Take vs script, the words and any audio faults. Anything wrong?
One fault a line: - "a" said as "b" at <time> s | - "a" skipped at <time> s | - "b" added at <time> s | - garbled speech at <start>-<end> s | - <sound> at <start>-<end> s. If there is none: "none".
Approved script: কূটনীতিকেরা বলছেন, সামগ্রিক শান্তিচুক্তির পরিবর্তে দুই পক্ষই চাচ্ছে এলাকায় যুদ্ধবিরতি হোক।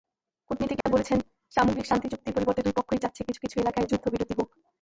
- dropout at 0.8-0.9 s
- "কিছু কিছু" added at 3.3 s